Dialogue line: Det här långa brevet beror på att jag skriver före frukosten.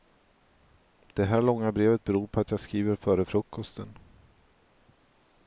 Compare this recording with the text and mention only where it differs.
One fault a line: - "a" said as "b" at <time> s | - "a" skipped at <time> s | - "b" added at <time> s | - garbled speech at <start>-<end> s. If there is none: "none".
none